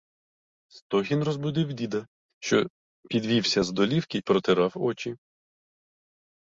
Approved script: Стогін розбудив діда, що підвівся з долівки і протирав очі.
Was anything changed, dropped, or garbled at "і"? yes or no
yes